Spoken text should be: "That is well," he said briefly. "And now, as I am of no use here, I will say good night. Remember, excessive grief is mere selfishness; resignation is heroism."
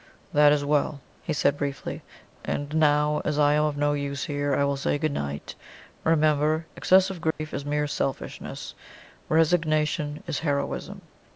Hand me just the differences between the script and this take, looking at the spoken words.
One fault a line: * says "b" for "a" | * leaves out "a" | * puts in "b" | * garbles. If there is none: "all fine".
all fine